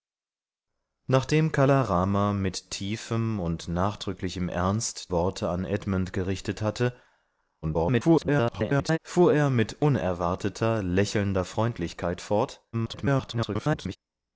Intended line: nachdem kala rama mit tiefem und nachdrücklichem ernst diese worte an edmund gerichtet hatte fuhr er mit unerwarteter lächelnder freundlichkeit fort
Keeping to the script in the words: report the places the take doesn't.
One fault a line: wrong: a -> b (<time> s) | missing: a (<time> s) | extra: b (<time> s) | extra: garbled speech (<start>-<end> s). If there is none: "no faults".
missing: diese (5.1 s)
extra: garbled speech (7.6-9.0 s)
extra: garbled speech (12.7-14.0 s)